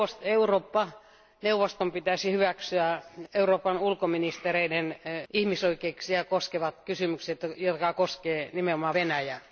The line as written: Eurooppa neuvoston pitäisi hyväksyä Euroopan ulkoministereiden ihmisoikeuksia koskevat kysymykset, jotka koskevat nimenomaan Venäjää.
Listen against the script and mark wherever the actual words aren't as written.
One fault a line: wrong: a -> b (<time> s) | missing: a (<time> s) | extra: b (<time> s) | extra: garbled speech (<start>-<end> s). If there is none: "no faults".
no faults